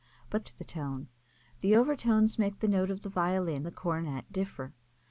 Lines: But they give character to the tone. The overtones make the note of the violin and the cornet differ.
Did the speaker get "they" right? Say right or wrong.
wrong